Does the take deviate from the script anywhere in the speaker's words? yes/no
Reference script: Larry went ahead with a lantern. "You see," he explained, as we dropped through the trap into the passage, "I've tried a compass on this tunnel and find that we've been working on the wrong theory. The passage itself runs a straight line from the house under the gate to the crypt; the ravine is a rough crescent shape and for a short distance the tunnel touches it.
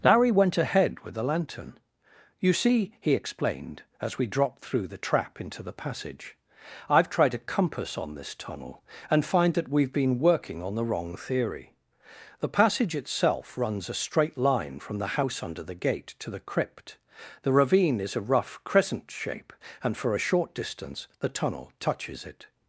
yes